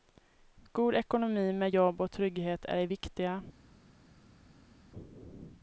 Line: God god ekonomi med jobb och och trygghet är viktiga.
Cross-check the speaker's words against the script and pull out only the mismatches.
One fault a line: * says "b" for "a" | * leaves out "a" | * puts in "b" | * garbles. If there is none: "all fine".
* leaves out "god"
* leaves out "och"
* puts in "det"